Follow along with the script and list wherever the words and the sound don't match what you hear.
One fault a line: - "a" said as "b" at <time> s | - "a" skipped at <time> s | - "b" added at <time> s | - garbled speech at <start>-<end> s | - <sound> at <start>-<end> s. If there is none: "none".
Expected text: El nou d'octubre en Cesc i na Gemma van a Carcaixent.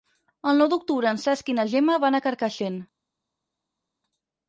none